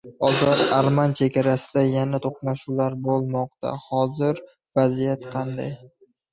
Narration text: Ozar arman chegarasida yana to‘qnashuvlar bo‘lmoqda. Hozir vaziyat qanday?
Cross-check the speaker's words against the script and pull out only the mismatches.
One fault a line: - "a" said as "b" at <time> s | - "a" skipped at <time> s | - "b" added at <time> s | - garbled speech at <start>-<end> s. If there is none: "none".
none